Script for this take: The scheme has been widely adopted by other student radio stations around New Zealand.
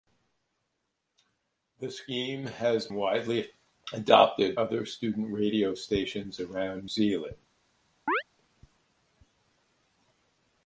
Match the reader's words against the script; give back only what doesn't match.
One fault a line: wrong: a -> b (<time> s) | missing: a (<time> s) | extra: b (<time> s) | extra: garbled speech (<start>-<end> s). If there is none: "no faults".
missing: been (2.9 s)
missing: by (4.6 s)
missing: New (6.9 s)